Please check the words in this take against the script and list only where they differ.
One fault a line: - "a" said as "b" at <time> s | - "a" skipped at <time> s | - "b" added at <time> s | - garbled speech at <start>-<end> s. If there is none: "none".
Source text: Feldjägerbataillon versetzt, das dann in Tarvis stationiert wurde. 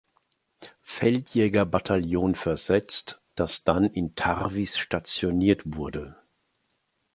none